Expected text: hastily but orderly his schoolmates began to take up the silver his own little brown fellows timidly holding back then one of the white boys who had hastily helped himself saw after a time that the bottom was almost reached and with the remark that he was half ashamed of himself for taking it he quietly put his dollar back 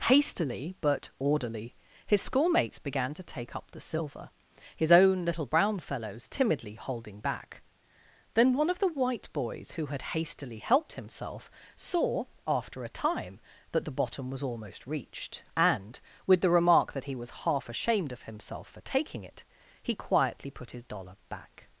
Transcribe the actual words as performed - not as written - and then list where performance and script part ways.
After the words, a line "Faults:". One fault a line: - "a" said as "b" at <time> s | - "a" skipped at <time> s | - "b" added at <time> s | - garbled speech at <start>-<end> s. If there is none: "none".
hastily but orderly his schoolmates began to take up the silver his own little brown fellows timidly holding back then one of the white boys who had hastily helped himself saw after a time that the bottom was almost reached and with the remark that he was half ashamed of himself for taking it he quietly put his dollar back
Faults:
none